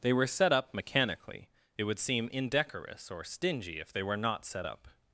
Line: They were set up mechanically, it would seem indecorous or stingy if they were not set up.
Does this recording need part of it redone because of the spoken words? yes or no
no